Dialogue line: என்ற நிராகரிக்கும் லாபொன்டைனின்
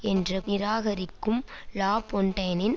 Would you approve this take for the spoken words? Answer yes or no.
yes